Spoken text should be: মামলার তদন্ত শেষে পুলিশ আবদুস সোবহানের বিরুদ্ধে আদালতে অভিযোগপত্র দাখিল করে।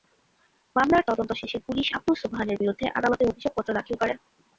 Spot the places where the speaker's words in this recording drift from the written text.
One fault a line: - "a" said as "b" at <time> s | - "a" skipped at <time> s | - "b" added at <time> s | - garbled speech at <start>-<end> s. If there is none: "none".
none